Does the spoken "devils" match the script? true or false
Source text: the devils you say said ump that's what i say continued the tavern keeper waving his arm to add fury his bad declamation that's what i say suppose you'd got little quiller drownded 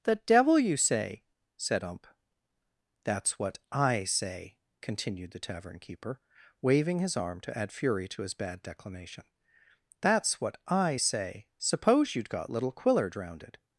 false